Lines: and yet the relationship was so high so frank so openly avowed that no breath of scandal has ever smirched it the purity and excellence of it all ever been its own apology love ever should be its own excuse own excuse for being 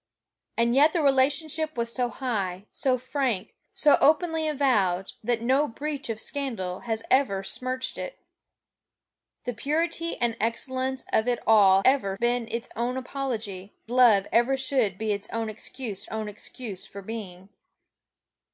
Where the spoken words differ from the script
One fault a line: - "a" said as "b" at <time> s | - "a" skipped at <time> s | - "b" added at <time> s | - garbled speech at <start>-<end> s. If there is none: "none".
none